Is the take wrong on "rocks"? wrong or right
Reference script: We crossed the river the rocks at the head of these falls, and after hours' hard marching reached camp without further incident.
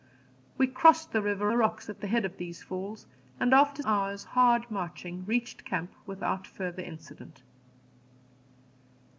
right